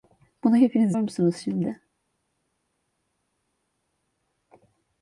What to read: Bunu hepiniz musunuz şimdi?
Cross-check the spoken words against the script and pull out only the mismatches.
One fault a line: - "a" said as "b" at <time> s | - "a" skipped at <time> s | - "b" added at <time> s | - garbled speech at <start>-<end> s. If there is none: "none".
none